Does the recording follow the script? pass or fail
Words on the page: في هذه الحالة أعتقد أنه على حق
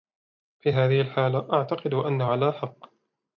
pass